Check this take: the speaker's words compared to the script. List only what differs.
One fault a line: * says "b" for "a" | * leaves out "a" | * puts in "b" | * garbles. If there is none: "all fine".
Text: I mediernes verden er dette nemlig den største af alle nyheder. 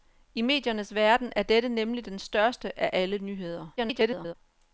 * garbles